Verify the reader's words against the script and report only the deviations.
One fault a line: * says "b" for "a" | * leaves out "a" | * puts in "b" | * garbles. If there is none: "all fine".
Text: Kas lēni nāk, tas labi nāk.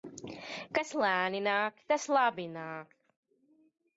all fine